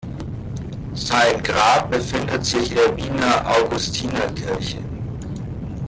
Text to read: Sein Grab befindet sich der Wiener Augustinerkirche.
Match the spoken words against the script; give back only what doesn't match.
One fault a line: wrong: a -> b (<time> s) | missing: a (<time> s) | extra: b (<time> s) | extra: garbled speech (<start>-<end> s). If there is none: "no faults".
no faults